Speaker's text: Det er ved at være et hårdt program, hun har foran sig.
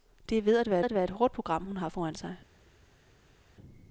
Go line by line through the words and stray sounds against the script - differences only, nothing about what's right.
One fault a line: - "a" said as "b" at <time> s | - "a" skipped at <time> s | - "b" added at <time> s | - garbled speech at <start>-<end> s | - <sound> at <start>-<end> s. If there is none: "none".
- "at være" added at 0.8 s